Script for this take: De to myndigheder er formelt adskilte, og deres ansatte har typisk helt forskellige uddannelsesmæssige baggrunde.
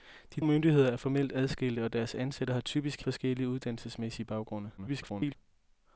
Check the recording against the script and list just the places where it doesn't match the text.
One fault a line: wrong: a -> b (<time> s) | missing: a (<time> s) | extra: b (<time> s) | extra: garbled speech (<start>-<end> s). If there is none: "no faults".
missing: to (0.4 s)
missing: helt (3.0 s)
extra: garbled speech (4.8-5.4 s)